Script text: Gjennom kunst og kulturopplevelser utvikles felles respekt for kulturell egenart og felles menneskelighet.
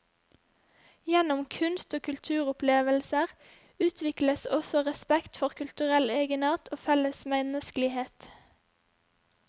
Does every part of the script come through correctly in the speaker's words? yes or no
no